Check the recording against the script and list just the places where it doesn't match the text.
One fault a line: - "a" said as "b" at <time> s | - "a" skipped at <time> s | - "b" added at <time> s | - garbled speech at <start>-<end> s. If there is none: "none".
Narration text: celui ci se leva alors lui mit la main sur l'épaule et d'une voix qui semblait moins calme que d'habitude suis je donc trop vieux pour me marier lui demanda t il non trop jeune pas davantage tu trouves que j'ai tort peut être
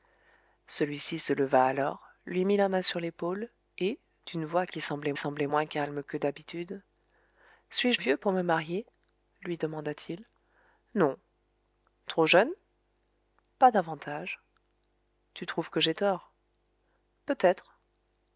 - "semblait" added at 5.2 s
- "donc trop" skipped at 8.0 s